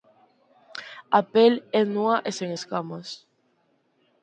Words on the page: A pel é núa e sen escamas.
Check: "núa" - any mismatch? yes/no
no